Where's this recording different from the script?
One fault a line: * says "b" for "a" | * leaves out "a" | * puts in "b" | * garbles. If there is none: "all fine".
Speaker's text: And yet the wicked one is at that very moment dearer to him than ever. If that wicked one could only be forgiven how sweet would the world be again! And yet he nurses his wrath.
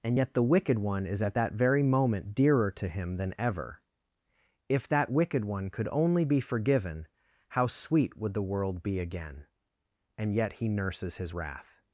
all fine